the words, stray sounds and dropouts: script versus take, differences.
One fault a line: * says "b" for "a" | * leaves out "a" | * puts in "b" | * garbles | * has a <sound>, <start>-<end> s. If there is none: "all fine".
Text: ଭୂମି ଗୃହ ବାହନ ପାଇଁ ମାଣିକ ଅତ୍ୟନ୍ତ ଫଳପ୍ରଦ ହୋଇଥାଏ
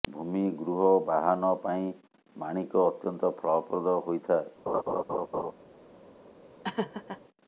* has a laugh, 4.7-5.5 s
* has a laugh, 6.6-7.2 s